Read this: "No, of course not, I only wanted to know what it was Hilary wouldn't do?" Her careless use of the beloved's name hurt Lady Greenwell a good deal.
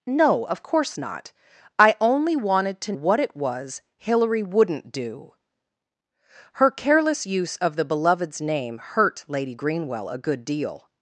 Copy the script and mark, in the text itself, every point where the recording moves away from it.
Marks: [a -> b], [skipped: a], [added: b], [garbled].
"No, of course not, I only wanted to [skipped: know] what it was Hilary wouldn't do?" Her careless use of the beloved's name hurt Lady Greenwell a good deal.